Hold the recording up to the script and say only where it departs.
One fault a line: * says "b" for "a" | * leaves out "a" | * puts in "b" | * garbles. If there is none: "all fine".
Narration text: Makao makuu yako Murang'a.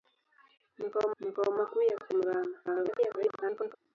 * puts in "makao"
* garbles